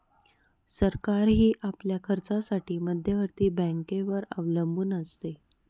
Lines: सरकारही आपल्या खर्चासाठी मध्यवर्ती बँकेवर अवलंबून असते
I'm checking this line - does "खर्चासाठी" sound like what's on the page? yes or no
yes